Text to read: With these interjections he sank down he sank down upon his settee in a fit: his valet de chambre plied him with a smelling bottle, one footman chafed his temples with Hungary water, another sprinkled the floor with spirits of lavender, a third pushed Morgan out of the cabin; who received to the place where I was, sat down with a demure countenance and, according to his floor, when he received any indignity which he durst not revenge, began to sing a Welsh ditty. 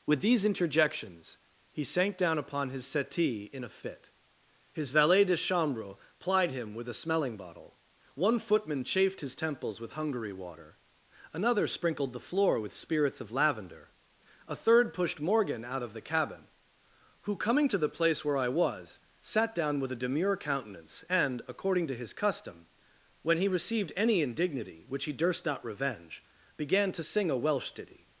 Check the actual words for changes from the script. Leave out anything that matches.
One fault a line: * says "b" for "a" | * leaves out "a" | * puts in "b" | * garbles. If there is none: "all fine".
* leaves out "he sank down"
* says "coming" for "received"
* says "custom" for "floor"